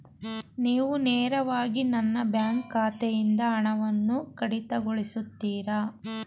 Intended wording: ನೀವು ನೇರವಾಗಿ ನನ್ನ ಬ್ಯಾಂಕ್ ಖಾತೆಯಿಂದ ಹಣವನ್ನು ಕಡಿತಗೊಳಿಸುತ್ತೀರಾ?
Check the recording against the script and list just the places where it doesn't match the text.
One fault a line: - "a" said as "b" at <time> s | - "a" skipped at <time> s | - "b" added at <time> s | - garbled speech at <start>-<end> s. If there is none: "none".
none